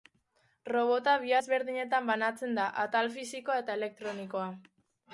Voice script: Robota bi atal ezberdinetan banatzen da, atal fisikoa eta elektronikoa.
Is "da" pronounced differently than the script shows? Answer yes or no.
no